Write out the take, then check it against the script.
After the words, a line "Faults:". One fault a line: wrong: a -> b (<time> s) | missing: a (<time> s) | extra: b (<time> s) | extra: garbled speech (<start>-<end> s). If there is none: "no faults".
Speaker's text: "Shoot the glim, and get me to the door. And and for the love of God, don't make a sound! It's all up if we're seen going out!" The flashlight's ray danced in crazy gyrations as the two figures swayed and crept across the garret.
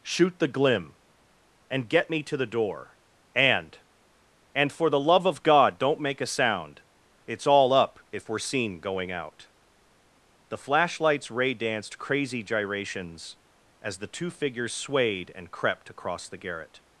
"Shoot the glim, and get me to the door. And and for the love of God, don't make a sound! It's all up if we're seen going out!" The flashlight's ray danced crazy gyrations as the two figures swayed and crept across the garret.
Faults:
missing: in (12.0 s)